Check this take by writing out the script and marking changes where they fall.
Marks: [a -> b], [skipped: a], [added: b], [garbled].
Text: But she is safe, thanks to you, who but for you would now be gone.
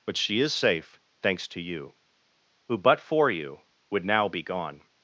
But she is safe, thanks to you, who but for you would now be gone.